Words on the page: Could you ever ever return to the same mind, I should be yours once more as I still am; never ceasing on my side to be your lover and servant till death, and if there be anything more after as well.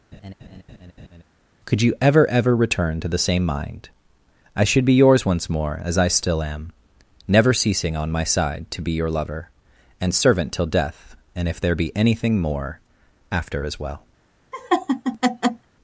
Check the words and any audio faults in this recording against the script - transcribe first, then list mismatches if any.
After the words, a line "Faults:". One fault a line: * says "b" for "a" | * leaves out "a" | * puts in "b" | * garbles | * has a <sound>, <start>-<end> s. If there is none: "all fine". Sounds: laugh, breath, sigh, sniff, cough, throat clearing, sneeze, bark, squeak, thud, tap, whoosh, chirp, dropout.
Could you ever ever return to the same mind, I should be yours once more as I still am; never ceasing on my side to be your lover and servant till death, and if there be anything more after as well.
Faults:
* has a laugh, 0.1-1.2 s
* has a laugh, 14.5-15.7 s